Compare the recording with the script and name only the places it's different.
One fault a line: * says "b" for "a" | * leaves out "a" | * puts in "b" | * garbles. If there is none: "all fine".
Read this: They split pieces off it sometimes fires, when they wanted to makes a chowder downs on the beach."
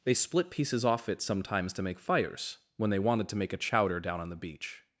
* puts in "to make"
* says "make" for "makes"
* says "down" for "downs"